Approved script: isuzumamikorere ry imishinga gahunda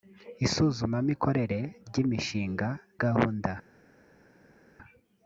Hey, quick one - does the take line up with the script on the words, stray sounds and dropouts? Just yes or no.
yes